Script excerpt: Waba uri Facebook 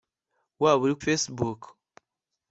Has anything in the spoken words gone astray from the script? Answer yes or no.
no